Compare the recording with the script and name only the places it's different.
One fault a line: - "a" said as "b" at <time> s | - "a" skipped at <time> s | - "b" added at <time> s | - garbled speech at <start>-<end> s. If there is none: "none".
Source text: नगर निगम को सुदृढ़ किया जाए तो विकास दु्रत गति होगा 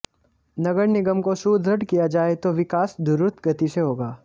- "से" added at 3.7 s